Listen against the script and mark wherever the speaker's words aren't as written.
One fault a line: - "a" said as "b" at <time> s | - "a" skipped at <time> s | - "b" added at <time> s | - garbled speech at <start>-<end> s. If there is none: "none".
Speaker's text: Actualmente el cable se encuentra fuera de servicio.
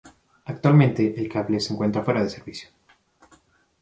none